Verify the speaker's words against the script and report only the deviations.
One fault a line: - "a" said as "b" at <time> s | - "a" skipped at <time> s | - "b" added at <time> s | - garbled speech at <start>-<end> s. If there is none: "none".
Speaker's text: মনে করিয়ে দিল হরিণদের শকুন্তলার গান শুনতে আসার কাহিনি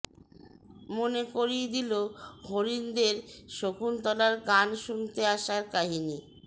none